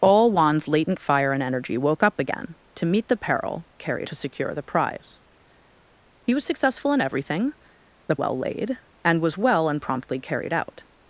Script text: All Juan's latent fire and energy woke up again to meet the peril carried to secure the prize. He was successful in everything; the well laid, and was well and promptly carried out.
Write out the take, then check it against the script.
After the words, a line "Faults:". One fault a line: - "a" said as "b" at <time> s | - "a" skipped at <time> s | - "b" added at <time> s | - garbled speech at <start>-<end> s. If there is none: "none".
All Juan's latent fire and energy woke up again to meet the peril carried to secure the prize. He was successful in everything; the well laid, and was well and promptly carried out.
Faults:
none